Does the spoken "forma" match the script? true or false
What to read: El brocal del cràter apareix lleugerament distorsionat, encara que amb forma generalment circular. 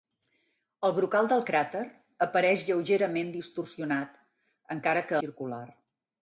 false